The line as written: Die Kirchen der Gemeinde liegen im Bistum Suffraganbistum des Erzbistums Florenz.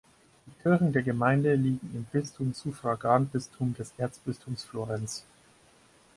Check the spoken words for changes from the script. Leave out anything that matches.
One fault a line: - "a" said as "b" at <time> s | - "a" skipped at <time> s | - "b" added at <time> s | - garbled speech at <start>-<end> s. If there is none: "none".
none